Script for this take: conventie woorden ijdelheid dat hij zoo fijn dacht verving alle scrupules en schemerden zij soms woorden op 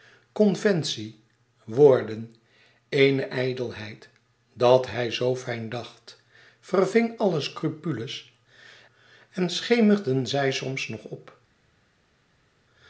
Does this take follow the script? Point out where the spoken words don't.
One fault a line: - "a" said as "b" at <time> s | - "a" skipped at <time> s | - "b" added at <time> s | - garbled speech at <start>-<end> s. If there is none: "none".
- "eene" added at 2.9 s
- "woorden" said as "nog" at 10.9 s